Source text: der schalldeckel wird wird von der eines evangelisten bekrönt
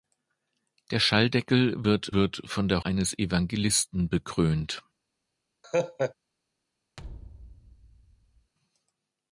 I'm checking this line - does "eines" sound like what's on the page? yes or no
yes